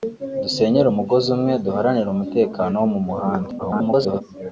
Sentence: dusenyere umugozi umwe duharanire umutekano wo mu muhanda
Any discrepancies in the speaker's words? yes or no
yes